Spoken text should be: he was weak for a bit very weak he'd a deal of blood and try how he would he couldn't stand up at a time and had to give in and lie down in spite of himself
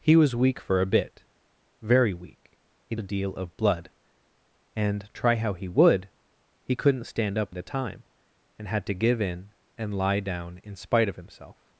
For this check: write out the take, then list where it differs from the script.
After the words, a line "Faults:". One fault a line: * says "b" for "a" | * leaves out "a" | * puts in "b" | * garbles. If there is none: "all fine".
he was weak for a bit very weak he'd a deal of blood and try how he would he couldn't stand up at a time and had to give in and lie down in spite of himself
Faults:
all fine